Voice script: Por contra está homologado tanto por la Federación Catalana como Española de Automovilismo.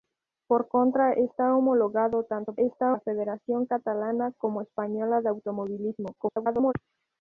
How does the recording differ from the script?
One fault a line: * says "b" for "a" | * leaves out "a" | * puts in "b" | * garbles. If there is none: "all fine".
* says "está" for "por"
* garbles